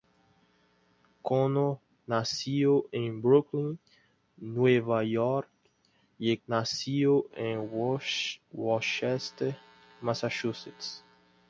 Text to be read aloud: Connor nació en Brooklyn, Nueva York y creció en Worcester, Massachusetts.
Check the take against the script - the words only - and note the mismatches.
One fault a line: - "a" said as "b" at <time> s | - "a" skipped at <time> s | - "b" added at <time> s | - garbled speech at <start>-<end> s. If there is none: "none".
- "creció" said as "nació" at 6.5 s